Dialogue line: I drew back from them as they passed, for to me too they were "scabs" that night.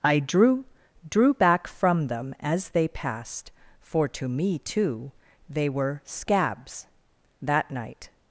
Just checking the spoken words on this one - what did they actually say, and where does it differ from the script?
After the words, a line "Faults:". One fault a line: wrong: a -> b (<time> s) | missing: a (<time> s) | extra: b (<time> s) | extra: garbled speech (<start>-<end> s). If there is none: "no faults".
I drew drew back from them as they passed, for to me too they were "scabs" that night.
Faults:
extra: drew (1.1 s)